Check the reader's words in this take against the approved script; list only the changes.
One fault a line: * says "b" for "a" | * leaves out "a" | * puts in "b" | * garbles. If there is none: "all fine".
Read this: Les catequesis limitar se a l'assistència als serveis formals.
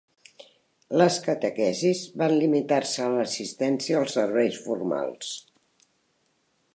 * puts in "van"